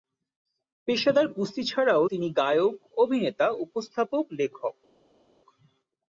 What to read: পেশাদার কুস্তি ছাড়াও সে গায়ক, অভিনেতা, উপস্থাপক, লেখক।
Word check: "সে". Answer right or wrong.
wrong